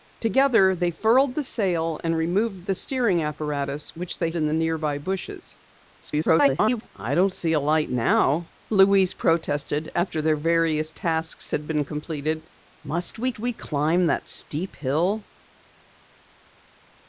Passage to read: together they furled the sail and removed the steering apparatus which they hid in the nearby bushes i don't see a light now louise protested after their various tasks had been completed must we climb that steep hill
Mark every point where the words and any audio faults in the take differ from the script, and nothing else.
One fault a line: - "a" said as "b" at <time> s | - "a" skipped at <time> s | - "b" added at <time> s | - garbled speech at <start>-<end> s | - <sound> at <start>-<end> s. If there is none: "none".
- "hid" skipped at 4.3 s
- garbled speech at 6.0-6.9 s
- "we" added at 13.4 s